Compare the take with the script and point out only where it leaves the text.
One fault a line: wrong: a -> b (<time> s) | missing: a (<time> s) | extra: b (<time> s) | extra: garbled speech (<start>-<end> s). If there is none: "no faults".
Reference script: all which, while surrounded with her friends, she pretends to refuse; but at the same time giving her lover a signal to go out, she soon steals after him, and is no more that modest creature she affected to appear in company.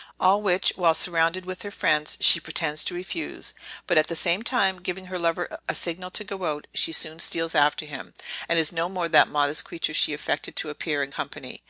no faults